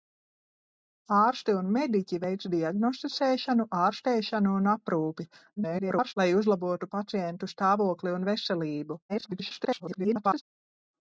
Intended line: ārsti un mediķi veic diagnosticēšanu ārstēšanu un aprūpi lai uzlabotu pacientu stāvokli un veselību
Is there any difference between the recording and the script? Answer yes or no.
yes